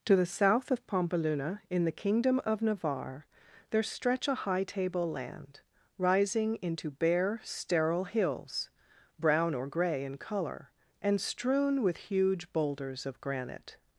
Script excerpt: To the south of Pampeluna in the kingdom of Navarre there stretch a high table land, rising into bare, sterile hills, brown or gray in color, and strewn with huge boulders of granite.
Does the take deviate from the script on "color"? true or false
false